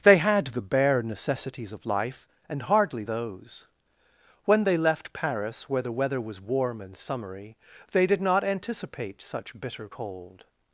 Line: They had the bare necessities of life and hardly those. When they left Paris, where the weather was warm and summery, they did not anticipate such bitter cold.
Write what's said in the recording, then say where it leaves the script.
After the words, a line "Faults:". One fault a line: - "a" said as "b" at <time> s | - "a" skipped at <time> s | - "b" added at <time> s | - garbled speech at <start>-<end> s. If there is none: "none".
They had the bare necessities of life and hardly those. When they left Paris, where the weather was warm and summery, they did not anticipate such bitter cold.
Faults:
none